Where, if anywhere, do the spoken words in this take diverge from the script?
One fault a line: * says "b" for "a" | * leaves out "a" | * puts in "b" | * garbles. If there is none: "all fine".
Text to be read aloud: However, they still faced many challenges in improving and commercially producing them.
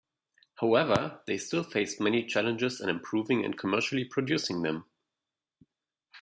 all fine